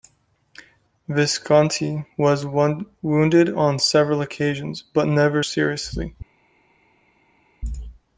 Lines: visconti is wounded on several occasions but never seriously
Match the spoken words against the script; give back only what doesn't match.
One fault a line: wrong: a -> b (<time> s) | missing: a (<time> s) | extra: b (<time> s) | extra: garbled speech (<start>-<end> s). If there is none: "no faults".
wrong: is -> was (2.2 s)